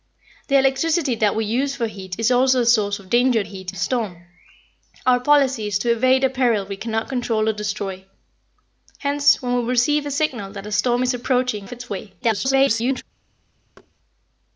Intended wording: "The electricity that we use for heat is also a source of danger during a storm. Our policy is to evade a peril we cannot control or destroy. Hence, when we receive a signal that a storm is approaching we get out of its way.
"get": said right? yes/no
no